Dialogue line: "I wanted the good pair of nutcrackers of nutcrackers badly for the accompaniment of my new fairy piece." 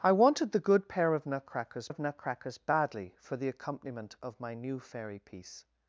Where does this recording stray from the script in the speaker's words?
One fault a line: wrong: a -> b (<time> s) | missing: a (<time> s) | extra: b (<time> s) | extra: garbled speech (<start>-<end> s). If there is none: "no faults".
no faults